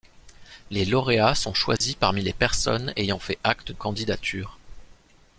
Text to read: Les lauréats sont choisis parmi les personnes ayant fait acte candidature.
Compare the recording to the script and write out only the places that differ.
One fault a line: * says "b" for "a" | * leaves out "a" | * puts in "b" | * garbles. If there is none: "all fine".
all fine